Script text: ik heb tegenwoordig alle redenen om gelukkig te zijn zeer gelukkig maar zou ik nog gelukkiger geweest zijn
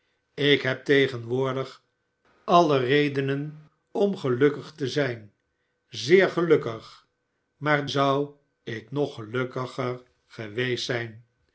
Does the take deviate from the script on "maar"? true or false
false